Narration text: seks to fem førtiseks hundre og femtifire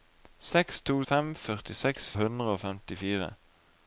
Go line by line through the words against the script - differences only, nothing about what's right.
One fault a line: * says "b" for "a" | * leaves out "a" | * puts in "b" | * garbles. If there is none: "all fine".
all fine